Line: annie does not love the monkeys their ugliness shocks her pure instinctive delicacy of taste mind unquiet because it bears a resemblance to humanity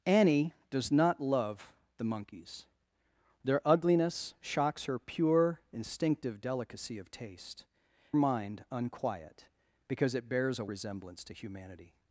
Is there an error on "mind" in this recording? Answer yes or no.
no